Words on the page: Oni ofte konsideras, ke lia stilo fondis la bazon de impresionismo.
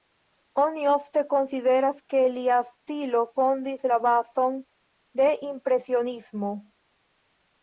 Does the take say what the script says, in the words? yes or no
yes